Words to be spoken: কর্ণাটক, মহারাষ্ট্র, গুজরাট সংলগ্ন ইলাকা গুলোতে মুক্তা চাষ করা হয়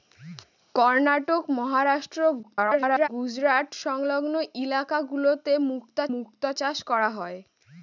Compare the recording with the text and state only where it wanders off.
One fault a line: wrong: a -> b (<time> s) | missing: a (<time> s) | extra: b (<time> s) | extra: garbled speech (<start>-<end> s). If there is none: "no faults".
extra: garbled speech (2.4-3.1 s)
extra: মুক্তা (6.1 s)